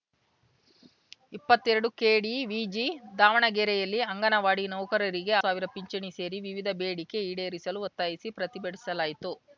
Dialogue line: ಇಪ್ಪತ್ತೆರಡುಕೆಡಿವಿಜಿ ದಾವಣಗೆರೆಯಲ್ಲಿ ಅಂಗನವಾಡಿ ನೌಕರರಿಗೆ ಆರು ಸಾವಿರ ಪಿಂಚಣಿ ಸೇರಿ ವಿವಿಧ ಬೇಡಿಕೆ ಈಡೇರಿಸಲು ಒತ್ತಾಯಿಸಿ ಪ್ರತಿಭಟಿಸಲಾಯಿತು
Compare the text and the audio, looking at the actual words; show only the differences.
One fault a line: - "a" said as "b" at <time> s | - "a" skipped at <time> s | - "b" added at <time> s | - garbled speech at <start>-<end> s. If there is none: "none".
- "ಆರು" skipped at 5.3 s